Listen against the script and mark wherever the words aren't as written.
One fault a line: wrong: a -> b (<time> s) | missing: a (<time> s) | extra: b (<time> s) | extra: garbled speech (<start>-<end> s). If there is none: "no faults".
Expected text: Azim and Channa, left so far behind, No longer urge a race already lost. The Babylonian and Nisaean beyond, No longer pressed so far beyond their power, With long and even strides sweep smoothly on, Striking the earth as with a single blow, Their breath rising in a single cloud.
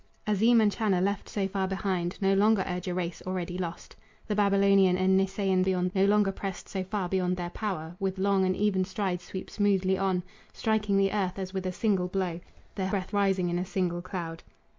no faults